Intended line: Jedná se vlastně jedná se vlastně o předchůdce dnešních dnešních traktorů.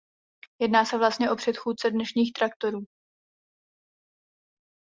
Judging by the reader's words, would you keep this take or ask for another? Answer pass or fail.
fail